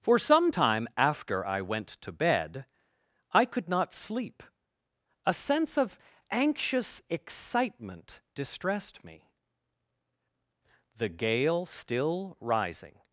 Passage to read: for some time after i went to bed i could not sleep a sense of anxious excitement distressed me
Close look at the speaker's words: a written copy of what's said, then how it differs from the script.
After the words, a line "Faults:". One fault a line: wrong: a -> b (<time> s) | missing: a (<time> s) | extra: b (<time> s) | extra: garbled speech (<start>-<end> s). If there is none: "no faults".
for some time after i went to bed i could not sleep a sense of anxious excitement distressed me the gale still rising
Faults:
extra: the gale still rising (10.9 s)